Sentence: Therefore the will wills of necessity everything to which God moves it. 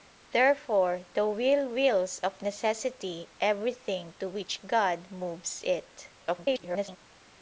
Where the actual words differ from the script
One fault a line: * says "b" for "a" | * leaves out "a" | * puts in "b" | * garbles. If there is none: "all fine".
* garbles